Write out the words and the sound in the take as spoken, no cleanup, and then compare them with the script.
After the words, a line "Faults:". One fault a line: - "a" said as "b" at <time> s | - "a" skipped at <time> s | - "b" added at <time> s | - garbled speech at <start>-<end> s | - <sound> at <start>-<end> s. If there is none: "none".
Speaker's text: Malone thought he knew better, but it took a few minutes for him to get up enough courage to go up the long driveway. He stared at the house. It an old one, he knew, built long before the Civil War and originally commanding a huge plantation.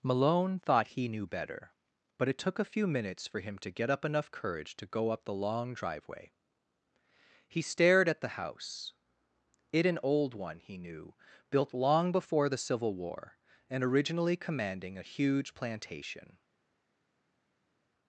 Malone thought he knew better, but it took a few minutes for him to get up enough courage to go up the long driveway. He stared at the house. It an old one, he knew, built long before the Civil War and originally commanding a huge plantation.
Faults:
none